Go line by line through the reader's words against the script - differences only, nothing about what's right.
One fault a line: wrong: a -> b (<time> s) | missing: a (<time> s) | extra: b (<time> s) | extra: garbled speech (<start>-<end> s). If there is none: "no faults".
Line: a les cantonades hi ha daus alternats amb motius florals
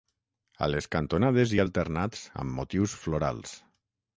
missing: daus (1.7 s)